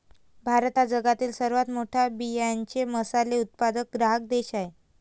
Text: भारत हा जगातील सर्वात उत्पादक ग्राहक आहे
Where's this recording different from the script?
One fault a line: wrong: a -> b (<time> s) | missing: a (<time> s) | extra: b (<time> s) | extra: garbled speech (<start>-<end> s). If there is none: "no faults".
extra: मोठा बियांचे मसाले (1.7 s)
extra: देश (4.3 s)